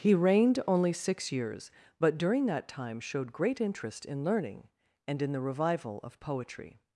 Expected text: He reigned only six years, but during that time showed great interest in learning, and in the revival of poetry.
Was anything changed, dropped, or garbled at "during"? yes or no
no